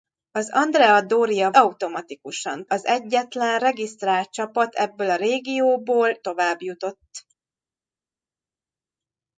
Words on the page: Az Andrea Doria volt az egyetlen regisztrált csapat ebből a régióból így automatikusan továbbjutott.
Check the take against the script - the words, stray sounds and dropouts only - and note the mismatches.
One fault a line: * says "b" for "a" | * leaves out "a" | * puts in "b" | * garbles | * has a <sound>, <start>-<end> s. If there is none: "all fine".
* says "automatikusan" for "volt"
* leaves out "így automatikusan"